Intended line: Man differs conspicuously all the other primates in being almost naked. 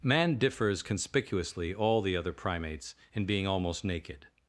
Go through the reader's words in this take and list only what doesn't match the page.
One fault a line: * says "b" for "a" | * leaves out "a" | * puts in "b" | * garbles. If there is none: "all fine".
all fine